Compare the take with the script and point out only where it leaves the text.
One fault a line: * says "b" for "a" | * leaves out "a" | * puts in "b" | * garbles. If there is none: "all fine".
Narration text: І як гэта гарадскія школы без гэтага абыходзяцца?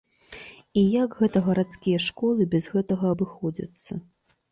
all fine